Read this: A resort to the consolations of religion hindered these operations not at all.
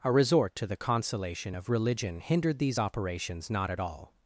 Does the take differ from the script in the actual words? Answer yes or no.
yes